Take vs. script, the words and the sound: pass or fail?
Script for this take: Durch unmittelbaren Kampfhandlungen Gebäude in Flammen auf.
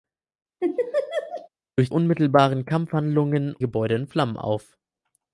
fail